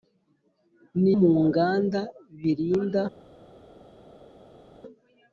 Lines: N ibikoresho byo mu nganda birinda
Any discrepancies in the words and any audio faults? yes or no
yes